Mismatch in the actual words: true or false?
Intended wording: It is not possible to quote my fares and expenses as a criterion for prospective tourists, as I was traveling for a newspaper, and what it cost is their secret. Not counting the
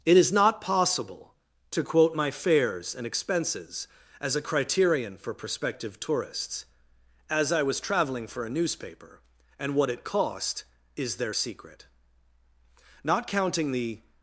false